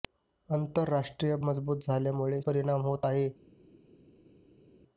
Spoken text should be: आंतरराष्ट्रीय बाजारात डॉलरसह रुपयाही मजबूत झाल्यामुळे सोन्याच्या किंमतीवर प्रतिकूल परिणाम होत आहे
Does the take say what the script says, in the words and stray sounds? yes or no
no